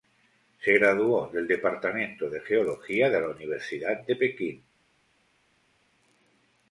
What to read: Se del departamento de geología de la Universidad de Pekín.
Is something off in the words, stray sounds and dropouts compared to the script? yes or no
yes